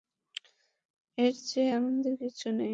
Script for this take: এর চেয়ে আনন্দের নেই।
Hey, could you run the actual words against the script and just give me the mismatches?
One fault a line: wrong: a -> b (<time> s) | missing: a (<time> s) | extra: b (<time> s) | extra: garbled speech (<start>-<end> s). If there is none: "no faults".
extra: কিছু (2.2 s)